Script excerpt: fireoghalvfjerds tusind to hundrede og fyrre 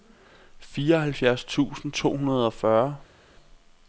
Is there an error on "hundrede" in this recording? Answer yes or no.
no